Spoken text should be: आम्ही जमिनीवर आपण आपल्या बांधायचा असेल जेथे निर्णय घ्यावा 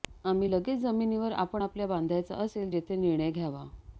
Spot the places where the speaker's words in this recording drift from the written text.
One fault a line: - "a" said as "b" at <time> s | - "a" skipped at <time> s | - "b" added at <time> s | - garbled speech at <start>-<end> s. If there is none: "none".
- "लगेच" added at 0.5 s